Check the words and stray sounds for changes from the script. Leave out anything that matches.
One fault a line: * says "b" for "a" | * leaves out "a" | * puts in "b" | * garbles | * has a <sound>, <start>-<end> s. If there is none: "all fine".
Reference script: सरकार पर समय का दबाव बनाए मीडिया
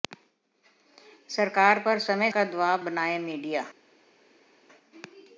all fine